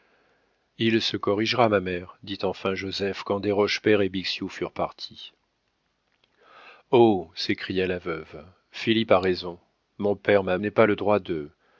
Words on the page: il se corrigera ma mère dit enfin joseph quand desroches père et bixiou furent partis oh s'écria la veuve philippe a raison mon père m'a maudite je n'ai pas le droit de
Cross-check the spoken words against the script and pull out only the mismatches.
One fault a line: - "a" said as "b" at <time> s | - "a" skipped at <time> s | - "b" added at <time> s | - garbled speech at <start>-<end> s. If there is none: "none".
- "maudite je" skipped at 10.6 s